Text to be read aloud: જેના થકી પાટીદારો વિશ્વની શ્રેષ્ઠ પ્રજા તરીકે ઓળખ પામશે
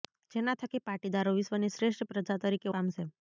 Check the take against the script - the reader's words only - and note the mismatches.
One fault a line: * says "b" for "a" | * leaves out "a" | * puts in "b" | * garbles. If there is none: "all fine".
* leaves out "ઓળખ"